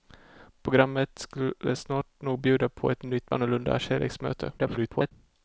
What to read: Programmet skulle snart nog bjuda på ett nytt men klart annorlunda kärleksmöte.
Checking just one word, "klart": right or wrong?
wrong